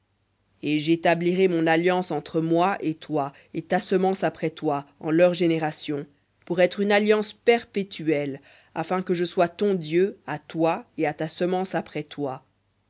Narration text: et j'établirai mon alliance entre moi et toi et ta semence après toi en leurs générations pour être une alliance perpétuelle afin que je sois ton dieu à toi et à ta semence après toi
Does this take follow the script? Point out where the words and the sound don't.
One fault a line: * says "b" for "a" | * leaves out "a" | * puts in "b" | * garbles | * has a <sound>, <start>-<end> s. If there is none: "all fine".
all fine